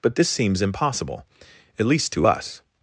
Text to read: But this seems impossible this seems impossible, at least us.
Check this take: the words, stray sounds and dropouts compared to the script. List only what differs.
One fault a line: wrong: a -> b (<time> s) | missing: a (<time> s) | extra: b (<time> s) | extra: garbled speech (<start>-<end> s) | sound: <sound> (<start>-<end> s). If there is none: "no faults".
missing: this seems impossible (1.2 s)
extra: to (2.1 s)